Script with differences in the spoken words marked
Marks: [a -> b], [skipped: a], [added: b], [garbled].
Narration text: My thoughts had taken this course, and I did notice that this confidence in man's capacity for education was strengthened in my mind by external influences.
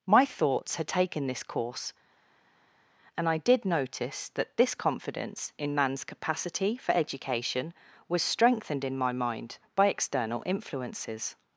My thoughts had taken this course, and I did notice that this confidence in man's capacity for education was strengthened in my mind by external influences.